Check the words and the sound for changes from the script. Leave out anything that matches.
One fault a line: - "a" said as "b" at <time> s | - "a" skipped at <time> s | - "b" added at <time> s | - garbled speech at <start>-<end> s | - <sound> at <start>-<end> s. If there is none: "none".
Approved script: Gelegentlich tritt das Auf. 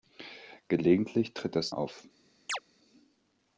- chirp at 2.5-2.6 s